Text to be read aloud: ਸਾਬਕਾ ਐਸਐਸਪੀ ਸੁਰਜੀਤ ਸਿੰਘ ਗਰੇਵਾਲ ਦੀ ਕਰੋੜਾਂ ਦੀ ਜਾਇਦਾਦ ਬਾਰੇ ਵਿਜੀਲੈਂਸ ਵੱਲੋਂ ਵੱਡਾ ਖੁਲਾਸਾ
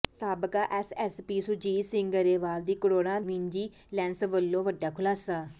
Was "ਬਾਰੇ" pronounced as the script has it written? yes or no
no